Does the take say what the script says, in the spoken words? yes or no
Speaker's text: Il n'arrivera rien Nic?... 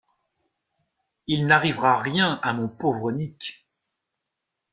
no